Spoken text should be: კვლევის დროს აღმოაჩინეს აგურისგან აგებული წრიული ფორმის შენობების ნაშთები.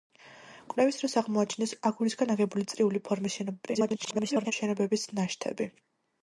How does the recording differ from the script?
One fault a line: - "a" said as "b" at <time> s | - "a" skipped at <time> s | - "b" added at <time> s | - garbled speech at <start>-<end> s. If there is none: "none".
- garbled speech at 3.7-4.5 s